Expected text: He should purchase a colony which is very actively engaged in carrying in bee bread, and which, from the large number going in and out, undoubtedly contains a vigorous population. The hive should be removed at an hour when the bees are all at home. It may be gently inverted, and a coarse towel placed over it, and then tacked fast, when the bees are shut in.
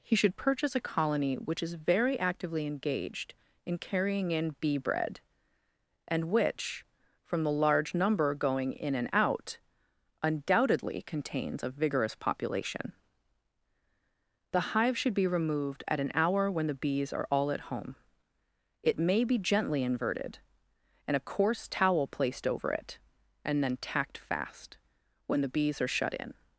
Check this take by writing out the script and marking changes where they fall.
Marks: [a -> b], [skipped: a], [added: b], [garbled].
He should purchase a colony which is very actively engaged in carrying in bee bread, and which, from the large number going in and out, undoubtedly contains a vigorous population. The hive should be removed at an hour when the bees are all at home. It may be gently inverted, and a coarse towel placed over it, and then tacked fast, when the bees are shut in.